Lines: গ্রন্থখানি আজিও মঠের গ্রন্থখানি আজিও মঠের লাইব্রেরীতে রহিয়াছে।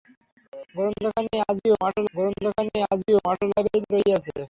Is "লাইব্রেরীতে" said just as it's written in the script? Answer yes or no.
yes